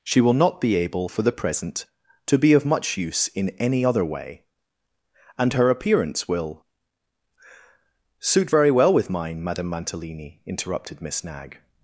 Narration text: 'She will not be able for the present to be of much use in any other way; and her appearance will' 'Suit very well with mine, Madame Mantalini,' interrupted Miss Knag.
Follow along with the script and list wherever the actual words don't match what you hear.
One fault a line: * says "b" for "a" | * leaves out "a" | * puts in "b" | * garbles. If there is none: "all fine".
all fine